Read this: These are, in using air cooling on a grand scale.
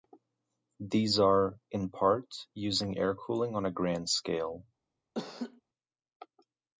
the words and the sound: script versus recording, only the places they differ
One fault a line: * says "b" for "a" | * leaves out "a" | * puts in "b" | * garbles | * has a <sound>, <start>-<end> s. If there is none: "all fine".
* puts in "part"
* has a laugh, 5.1-5.6 s